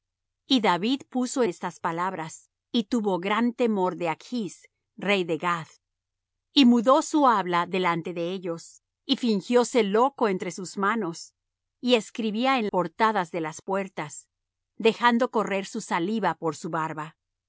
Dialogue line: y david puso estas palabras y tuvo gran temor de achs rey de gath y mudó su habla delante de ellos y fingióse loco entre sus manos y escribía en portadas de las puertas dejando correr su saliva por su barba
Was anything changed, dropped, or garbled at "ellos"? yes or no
no